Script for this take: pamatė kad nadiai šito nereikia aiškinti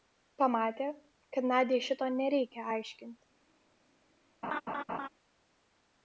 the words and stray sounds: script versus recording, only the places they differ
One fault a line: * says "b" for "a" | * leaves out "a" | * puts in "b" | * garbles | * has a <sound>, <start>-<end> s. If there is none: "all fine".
* has a laugh, 4.4-5.1 s